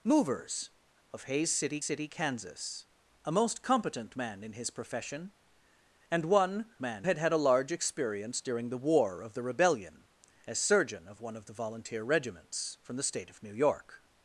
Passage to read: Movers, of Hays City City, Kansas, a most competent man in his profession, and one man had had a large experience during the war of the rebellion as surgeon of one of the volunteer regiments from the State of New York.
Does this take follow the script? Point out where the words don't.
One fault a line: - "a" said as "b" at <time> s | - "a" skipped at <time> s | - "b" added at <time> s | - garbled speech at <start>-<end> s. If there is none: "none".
none